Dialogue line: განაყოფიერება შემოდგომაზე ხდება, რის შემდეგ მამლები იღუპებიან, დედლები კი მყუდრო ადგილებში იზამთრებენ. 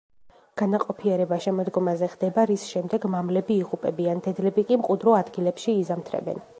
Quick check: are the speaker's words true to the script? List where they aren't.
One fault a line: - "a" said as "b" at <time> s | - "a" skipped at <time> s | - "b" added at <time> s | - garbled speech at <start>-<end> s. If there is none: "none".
none